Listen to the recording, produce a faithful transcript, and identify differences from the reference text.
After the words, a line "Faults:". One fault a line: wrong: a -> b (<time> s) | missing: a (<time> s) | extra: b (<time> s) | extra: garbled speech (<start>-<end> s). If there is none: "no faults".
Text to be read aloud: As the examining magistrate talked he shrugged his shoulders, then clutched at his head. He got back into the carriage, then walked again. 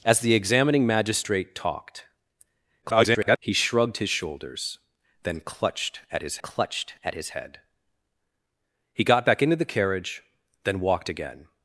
As the examining magistrate talked [garbled] he shrugged his shoulders, then clutched at his clutched at his head. He got back into the carriage, then walked again.
Faults:
extra: garbled speech (2.8-3.4 s)
extra: clutched at his (6.4 s)